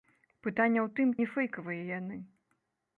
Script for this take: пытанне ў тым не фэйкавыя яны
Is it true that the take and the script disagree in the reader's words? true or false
false